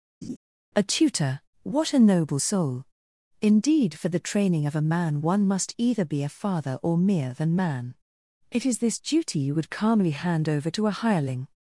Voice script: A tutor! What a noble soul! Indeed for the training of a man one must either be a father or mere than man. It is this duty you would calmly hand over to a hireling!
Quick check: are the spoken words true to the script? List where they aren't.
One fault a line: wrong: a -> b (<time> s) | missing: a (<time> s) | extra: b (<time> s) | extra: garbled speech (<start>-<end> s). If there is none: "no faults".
no faults